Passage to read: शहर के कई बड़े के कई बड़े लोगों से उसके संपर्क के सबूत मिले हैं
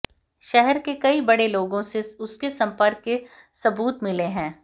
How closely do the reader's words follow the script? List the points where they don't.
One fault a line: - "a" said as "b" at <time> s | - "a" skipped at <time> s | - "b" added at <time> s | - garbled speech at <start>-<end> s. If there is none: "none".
- "के कई बड़े" skipped at 1.5 s